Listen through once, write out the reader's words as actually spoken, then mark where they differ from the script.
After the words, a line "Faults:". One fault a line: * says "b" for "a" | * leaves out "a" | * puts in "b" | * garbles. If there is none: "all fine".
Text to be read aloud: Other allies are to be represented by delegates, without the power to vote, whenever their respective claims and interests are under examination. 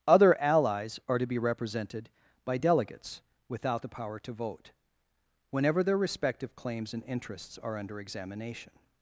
Other allies are to be represented by delegates, without the power to vote, whenever their respective claims and interests are under examination.
Faults:
all fine